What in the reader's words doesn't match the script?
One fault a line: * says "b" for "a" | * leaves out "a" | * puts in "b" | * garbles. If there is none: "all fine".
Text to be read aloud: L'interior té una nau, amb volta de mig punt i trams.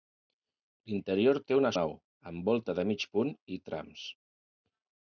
all fine